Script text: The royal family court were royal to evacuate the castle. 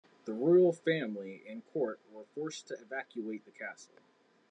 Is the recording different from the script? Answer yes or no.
yes